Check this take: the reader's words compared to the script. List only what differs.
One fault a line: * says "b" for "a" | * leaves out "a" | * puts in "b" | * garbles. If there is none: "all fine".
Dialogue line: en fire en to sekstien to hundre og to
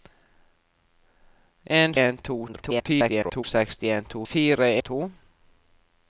* leaves out "fire"
* garbles
* says "fire" for "hundre"